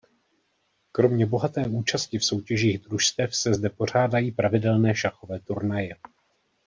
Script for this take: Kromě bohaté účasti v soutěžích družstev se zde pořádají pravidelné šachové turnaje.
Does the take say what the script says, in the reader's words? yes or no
yes